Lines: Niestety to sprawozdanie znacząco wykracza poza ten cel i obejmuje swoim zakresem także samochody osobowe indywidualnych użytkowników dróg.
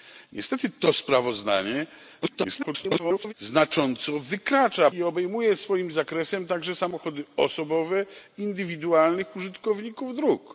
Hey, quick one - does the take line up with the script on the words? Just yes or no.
no